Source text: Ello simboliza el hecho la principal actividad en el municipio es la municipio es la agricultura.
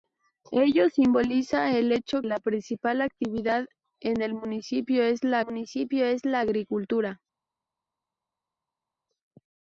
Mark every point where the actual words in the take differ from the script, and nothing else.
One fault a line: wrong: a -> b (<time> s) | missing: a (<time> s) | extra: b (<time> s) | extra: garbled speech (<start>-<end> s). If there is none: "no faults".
no faults